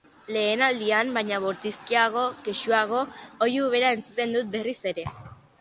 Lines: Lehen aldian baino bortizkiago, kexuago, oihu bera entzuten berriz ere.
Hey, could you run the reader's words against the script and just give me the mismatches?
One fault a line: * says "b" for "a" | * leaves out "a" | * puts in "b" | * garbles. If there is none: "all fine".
* puts in "dut"